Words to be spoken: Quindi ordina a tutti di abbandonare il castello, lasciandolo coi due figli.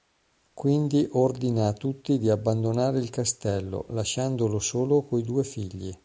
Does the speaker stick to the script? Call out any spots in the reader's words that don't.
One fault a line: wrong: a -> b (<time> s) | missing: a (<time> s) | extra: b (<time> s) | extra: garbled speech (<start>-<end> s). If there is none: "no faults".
extra: solo (4.6 s)